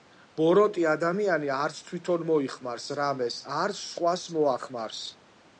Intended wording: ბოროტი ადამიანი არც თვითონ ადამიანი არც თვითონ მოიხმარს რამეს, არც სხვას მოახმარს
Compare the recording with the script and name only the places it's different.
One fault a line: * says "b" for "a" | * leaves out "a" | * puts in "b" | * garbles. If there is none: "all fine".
* leaves out "ადამიანი არც თვითონ"